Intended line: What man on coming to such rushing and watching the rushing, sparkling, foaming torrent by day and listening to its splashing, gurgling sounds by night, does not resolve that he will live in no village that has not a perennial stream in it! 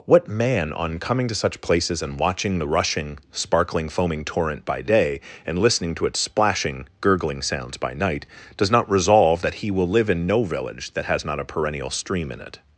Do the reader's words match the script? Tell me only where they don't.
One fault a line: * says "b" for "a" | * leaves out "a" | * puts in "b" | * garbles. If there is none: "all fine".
* says "places" for "rushing"